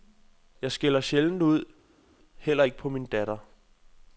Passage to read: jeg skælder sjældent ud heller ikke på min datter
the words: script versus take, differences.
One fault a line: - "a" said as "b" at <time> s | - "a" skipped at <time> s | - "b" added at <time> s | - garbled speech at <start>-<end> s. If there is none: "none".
none